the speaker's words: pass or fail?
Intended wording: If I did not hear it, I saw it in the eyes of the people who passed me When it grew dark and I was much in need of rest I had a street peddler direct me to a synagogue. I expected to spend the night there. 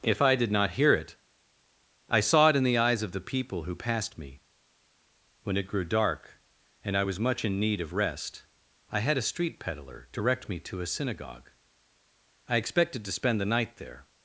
pass